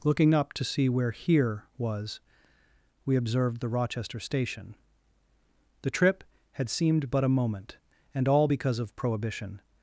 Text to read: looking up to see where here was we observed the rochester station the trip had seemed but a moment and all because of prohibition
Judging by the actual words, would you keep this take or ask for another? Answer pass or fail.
pass